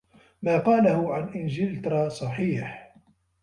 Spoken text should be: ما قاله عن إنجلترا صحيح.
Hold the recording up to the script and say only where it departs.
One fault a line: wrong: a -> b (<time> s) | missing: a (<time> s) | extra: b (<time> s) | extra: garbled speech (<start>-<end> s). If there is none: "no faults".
no faults